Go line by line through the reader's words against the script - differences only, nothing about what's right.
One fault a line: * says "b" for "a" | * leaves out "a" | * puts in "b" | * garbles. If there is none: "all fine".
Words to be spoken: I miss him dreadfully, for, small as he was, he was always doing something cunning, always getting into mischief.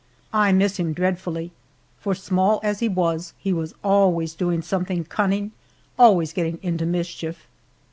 all fine